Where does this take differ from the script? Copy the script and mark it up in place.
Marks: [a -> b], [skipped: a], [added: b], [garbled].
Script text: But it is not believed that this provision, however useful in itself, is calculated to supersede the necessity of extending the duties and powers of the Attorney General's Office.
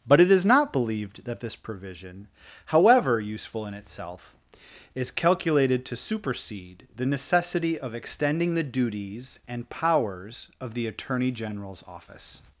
But it is not believed that this provision, however useful in itself, is calculated to supersede the necessity of extending the duties and powers of the Attorney General's Office.